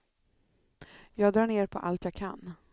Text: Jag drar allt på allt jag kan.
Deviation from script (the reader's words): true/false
true